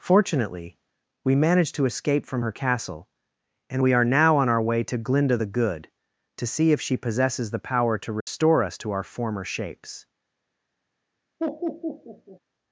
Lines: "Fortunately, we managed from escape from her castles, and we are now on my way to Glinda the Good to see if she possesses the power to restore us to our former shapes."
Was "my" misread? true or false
true